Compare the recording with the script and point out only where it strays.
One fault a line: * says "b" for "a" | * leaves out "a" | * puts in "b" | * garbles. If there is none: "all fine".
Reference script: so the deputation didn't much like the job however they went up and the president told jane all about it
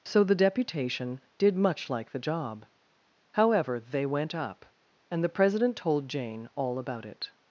* says "did" for "didn't"